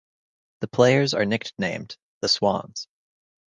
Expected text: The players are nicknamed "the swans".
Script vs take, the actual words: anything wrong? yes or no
no